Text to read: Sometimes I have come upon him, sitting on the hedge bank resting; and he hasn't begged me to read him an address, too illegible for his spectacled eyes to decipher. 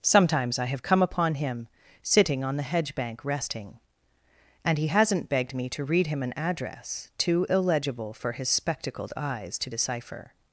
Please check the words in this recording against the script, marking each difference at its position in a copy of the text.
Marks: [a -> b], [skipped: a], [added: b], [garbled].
Sometimes I have come upon him, sitting on the hedge bank resting; and he hasn't begged me to read him an address, too illegible for his spectacled eyes to decipher.